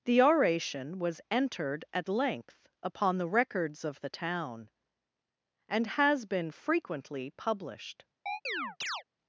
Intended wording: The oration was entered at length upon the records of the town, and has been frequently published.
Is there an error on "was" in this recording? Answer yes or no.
no